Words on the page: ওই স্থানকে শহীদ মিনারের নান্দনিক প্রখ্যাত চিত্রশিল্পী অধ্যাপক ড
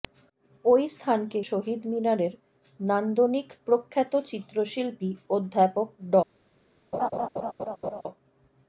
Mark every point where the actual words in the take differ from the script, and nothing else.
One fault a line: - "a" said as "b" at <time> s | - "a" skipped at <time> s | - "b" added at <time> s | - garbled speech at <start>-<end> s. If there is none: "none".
none